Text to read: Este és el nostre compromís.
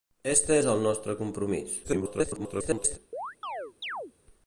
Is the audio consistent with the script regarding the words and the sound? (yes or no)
no